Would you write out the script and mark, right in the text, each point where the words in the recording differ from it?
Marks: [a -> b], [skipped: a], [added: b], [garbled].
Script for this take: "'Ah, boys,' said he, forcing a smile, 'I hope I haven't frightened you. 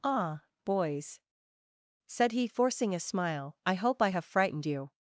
"'Ah, boys,' said he, forcing a smile, 'I hope I [haven't -> have] frightened you.